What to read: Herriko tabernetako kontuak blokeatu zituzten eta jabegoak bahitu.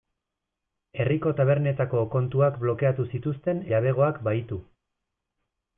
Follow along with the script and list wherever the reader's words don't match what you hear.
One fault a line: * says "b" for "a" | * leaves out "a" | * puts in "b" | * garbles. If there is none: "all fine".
* leaves out "eta"